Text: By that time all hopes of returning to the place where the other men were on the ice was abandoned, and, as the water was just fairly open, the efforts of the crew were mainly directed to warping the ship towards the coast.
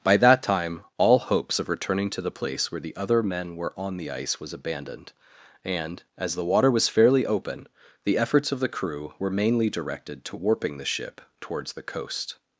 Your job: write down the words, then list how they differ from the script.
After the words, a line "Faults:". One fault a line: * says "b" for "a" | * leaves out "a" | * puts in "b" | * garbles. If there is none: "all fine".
By that time all hopes of returning to the place where the other men were on the ice was abandoned, and, as the water was fairly open, the efforts of the crew were mainly directed to warping the ship towards the coast.
Faults:
* leaves out "just"